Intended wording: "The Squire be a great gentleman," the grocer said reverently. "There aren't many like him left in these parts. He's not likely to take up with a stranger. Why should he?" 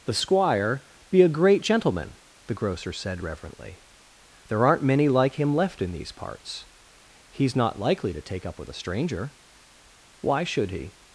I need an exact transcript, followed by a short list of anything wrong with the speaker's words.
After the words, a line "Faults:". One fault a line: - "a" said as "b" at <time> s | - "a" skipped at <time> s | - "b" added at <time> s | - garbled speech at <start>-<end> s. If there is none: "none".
"The Squire be a great gentleman," the grocer said reverently. "There aren't many like him left in these parts. He's not likely to take up with a stranger. Why should he?"
Faults:
none